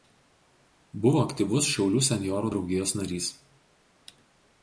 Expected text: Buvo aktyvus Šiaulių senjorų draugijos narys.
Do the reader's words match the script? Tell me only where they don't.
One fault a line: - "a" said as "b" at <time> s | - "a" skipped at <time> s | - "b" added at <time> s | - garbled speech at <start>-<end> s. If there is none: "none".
none